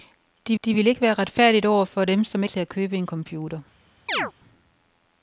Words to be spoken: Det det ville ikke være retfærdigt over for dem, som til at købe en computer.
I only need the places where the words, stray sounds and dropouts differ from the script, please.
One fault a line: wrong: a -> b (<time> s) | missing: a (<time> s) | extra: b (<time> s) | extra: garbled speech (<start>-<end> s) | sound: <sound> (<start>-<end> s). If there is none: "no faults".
sound: chirp (4.1-4.3 s)